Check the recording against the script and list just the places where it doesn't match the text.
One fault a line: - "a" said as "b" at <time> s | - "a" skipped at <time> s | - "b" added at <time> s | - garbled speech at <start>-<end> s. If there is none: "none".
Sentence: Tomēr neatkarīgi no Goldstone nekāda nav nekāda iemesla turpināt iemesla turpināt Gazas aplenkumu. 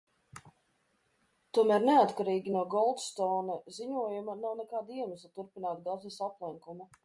- "nekāda" said as "ziņojuma" at 3.8 s
- "iemesla turpināt" skipped at 5.8 s